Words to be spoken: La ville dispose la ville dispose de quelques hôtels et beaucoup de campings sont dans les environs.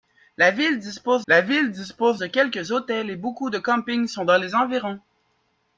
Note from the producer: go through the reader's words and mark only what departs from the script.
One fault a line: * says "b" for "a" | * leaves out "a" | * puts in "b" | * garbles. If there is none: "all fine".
all fine